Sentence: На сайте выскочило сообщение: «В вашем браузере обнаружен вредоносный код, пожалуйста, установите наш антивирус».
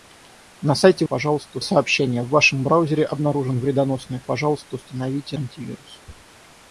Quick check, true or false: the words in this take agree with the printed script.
false